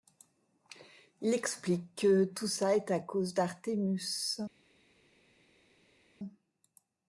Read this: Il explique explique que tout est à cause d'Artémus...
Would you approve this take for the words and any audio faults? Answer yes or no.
no